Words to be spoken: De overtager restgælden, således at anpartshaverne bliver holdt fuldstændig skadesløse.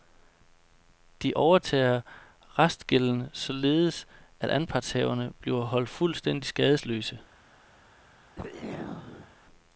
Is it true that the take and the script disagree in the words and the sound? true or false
true